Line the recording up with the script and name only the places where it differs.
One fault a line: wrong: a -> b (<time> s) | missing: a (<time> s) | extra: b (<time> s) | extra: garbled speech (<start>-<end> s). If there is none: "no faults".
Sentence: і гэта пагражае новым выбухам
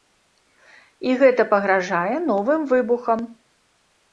no faults